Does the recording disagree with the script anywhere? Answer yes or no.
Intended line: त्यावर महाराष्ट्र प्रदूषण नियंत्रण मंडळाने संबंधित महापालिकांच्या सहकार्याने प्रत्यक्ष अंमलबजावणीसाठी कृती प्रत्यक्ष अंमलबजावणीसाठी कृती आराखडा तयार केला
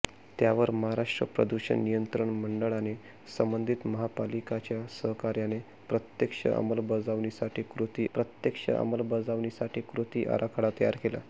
no